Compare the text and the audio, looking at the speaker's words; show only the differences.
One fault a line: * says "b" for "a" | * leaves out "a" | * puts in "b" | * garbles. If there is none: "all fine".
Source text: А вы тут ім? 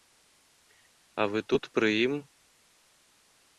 * puts in "пры"